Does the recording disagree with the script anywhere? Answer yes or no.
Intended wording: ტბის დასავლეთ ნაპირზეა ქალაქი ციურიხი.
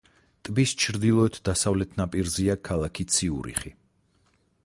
yes